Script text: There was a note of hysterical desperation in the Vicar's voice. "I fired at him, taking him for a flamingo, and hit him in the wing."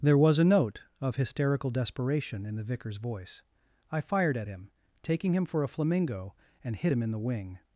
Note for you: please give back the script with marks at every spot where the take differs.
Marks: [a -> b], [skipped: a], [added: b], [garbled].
There was a note of hysterical desperation in the Vicar's voice. "I fired at him, taking him for a flamingo, and hit him in the wing."